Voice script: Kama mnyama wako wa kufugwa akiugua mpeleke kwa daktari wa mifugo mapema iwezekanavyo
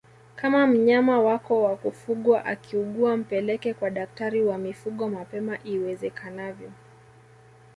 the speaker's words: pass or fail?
pass